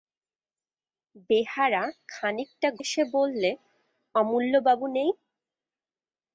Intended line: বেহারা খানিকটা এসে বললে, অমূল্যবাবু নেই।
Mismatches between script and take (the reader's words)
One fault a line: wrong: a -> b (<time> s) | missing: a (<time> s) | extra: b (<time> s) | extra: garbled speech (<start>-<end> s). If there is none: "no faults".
no faults